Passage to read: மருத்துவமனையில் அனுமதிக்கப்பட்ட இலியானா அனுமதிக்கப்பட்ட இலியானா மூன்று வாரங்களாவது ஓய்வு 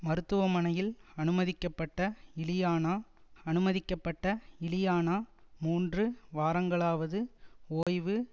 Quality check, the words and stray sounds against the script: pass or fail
fail